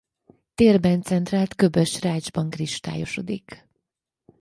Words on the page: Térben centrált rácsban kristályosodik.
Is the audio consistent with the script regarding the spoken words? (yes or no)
no